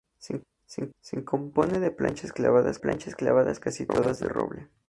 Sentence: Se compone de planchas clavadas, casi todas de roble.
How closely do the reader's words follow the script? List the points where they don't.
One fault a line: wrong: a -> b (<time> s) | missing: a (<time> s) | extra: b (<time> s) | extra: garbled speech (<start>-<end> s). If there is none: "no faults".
extra: se (1.0 s)
extra: planchas clavadas (2.8 s)